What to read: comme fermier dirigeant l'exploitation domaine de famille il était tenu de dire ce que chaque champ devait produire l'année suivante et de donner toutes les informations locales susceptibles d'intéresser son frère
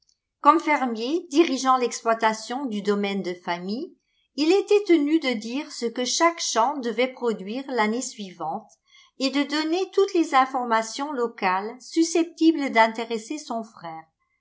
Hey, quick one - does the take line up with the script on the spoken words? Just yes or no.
no